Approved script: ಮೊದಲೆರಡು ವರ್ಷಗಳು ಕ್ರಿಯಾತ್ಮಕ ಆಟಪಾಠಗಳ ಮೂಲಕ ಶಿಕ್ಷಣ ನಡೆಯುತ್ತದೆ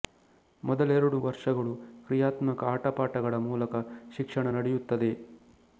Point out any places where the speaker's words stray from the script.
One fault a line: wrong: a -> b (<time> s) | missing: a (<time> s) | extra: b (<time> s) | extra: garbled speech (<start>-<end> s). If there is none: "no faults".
no faults